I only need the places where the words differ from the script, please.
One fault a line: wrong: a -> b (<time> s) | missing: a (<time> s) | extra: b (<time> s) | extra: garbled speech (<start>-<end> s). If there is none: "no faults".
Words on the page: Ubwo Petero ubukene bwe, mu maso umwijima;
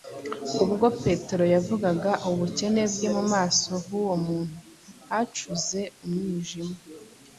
extra: yavugaga (1.5 s)
extra: h'uwo muntu hacuze (3.9 s)